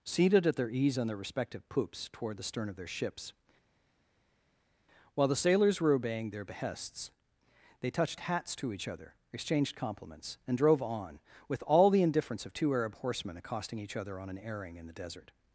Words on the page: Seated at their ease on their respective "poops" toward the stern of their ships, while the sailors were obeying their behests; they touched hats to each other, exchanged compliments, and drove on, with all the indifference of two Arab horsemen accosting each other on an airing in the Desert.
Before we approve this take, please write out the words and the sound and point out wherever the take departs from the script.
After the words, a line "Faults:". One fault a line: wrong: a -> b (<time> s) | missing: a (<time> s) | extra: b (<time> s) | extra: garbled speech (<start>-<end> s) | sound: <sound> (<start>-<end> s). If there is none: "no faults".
Seated at their ease on their respective "poops" toward the stern of their ships, while the sailors were obeying their behests; they touched hats to each other, exchanged compliments, and drove on, with all the indifference of two Arab horsemen accosting each other on an airing in the Desert.
Faults:
no faults